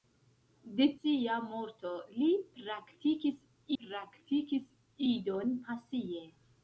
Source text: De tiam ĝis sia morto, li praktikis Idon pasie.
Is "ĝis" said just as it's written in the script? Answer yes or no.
no